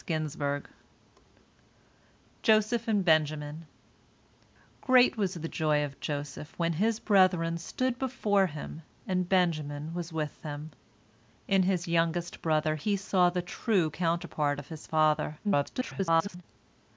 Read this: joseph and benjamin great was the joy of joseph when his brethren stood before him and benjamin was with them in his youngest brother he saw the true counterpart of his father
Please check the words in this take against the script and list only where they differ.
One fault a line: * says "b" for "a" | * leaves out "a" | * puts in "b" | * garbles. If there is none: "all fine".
* garbles